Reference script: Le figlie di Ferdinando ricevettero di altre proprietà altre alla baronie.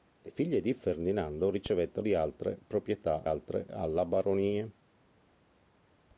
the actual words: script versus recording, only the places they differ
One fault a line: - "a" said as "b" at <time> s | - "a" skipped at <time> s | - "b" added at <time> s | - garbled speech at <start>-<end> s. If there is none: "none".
none